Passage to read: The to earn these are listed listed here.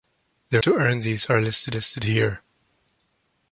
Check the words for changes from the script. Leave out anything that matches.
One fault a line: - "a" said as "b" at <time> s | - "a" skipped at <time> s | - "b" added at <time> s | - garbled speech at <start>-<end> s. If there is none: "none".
none